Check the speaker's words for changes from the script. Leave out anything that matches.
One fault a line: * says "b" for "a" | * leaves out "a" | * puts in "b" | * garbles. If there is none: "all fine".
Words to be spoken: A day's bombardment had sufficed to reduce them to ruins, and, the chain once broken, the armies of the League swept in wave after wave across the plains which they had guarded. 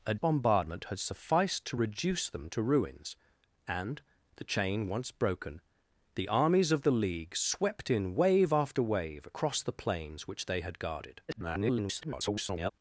* leaves out "day's"
* garbles